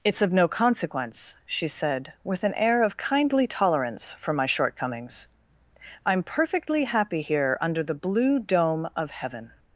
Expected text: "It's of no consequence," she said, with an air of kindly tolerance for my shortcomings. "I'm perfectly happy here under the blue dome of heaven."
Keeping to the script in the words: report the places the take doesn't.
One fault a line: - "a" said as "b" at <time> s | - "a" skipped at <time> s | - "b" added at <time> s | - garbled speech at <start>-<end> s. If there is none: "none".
none